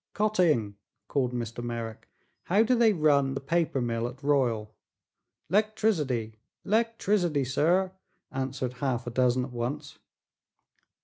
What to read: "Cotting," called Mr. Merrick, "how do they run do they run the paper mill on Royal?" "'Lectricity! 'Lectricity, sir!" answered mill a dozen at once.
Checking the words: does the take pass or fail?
fail